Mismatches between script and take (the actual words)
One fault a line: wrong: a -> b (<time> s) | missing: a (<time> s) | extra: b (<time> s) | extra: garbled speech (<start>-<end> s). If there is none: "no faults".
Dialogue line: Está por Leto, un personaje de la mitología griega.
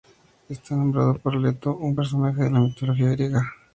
extra: nombrado (0.8 s)